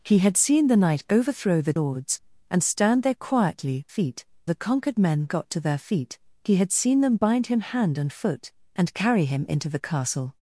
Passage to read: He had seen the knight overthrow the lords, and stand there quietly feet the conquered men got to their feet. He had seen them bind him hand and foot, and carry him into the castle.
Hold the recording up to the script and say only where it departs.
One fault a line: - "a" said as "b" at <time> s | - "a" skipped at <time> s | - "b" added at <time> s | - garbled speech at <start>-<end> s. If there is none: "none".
none